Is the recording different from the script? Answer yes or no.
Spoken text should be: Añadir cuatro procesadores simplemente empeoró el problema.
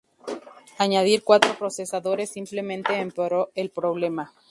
no